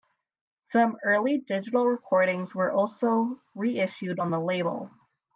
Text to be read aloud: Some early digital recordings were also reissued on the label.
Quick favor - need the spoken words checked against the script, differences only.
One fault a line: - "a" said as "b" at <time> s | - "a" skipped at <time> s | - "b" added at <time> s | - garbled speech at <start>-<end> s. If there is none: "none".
none